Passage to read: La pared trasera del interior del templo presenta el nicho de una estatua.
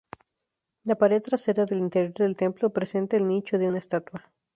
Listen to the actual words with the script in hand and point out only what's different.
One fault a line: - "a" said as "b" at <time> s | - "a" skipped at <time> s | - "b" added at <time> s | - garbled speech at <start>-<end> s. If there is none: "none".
none